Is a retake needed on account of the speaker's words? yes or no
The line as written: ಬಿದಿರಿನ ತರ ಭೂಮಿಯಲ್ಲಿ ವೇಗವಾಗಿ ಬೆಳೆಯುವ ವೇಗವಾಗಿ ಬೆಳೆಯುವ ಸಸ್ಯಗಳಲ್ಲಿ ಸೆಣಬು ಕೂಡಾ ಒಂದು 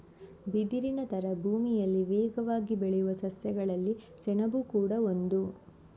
yes